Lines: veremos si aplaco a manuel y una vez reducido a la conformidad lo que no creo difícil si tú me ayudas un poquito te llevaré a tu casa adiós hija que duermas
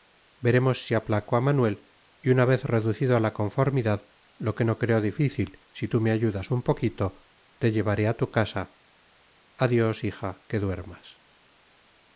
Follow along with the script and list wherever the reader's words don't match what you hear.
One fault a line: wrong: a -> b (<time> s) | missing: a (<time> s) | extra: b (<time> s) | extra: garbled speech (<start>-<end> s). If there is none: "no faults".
no faults